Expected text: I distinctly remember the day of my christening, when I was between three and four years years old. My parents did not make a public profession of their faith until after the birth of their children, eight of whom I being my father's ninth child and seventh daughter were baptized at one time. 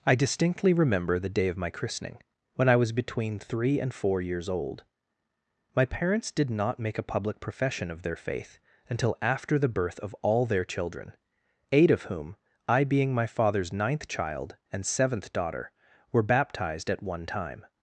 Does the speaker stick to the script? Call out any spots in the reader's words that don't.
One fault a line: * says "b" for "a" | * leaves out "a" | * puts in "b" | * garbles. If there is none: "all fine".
* leaves out "years"
* puts in "all"